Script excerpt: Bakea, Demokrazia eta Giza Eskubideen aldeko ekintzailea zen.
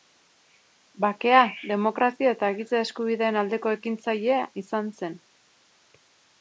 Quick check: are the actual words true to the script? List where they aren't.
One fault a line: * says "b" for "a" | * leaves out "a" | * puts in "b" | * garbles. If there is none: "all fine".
* puts in "izan"